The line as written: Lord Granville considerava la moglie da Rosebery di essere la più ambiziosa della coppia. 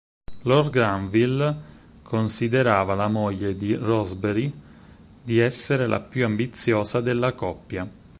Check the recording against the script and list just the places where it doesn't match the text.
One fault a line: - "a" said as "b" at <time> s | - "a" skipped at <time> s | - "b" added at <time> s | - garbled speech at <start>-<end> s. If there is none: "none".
- "da" said as "di" at 3.6 s